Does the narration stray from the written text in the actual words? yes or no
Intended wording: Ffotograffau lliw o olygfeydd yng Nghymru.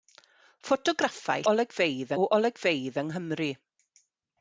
yes